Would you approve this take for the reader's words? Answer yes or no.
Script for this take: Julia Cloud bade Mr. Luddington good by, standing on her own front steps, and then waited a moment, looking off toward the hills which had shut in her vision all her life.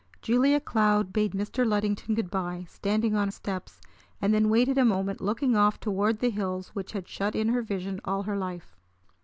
no